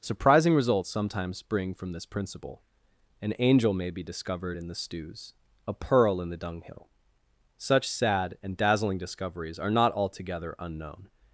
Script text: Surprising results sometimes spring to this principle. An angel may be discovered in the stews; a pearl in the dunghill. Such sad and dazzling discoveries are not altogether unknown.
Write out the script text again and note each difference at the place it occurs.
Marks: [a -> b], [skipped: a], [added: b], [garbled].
Surprising results sometimes spring [to -> from] this principle. An angel may be discovered in the stews; a pearl in the dunghill. Such sad and dazzling discoveries are not altogether unknown.